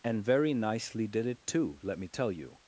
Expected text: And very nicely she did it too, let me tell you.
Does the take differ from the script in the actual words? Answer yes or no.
yes